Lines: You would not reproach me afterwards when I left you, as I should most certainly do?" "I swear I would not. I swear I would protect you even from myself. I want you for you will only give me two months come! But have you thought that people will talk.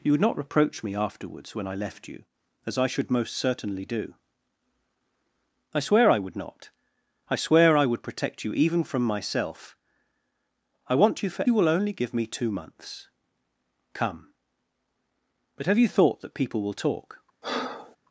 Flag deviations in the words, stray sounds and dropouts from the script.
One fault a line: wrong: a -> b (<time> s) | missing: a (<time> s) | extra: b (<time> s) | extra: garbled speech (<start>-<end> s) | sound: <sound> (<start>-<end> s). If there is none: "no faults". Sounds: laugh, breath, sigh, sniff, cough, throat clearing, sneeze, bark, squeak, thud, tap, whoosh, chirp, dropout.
sound: breath (17.4-18.0 s)